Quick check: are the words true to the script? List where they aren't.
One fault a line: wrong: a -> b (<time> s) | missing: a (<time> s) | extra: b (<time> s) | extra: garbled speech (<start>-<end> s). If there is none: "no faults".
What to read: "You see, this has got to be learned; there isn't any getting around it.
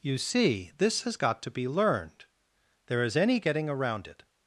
wrong: isn't -> is (3.0 s)